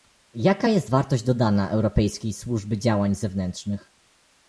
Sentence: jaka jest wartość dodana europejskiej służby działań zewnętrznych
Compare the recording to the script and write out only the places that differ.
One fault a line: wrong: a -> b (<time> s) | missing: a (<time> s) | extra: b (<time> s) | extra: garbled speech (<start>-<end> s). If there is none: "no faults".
no faults